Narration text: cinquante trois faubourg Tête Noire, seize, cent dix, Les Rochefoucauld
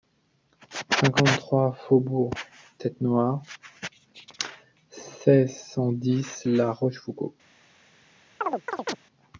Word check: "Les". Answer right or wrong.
wrong